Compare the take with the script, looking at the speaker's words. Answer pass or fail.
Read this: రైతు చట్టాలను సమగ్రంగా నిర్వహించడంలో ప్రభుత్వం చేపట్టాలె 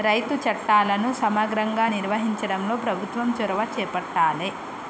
fail